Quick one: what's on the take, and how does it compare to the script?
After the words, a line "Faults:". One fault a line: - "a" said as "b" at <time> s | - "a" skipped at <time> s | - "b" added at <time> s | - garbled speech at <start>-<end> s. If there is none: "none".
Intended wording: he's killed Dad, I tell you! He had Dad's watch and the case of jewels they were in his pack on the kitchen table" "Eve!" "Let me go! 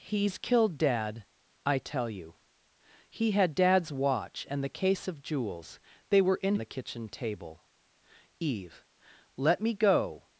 he's killed Dad, I tell you! He had Dad's watch and the case of jewels they were in the kitchen table" "Eve!" "Let me go!
Faults:
- "his pack on" skipped at 6.5 s